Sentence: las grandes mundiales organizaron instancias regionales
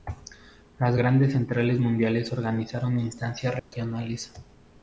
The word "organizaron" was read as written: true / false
true